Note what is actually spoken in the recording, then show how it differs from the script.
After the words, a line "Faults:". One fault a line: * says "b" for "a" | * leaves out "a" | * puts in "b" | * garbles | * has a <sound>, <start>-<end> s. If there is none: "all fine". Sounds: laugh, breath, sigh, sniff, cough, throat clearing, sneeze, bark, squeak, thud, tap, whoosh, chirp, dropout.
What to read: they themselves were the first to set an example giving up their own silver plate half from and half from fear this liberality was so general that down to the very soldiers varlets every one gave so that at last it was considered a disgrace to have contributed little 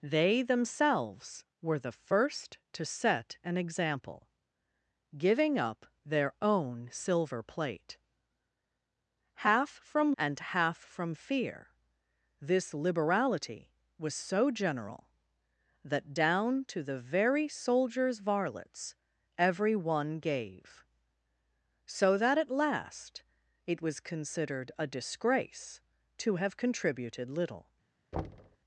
they themselves were the first to set an example giving up their own silver plate half from and half from fear this liberality was so general that down to the very soldiers varlets every one gave so that at last it was considered a disgrace to have contributed little
Faults:
* has a thud, 28.1-28.6 s